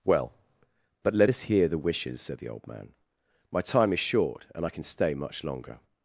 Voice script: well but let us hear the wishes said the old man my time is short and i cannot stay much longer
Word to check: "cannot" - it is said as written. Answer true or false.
false